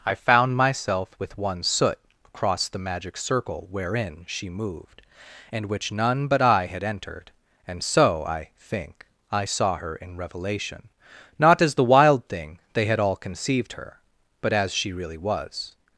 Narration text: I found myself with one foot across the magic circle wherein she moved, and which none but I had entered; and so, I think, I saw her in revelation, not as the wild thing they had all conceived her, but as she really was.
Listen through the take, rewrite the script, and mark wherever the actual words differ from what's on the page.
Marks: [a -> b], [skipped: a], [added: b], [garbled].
I found myself with one [foot -> soot] across the magic circle wherein she moved, and which none but I had entered; and so, I think, I saw her in revelation, not as the wild thing they had all conceived her, but as she really was.